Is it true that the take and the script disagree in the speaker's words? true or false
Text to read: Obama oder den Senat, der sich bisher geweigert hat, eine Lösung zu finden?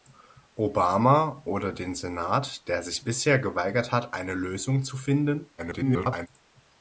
true